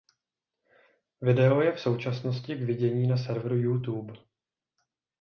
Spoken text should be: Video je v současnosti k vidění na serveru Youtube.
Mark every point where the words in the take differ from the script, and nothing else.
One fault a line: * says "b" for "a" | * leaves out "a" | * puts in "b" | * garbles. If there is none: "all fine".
all fine